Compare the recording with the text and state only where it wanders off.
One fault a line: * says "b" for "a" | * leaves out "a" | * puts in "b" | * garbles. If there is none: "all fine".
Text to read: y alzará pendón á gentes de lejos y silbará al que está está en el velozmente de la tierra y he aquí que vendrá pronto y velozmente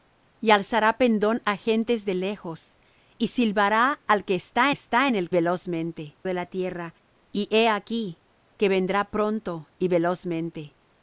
all fine